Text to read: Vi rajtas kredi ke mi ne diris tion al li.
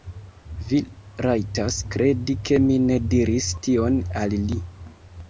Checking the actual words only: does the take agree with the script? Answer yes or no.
yes